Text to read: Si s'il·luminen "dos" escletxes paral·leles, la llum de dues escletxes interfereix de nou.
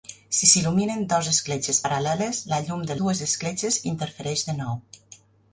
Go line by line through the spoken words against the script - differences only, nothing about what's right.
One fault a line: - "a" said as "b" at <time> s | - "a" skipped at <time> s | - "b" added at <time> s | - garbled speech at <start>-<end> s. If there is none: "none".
none